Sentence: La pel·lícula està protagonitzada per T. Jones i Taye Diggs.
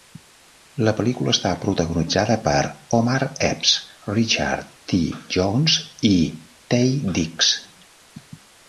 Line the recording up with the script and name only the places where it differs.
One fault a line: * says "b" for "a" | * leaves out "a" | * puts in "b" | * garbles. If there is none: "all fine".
* puts in "Omar Epps Richard"